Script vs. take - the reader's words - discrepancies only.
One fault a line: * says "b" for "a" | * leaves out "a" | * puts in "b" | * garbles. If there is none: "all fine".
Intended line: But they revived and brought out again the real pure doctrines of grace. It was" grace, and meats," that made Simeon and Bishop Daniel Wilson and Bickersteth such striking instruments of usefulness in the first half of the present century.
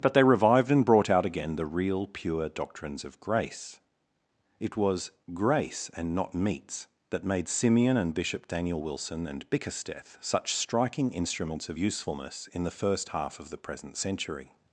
* puts in "not"